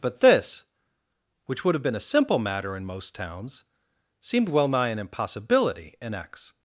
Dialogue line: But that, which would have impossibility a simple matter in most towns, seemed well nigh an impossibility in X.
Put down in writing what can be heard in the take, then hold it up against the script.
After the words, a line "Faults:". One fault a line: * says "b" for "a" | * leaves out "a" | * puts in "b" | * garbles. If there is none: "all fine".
But this, which would have been a simple matter in most towns, seemed well nigh an impossibility in X.
Faults:
* says "this" for "that"
* says "been" for "impossibility"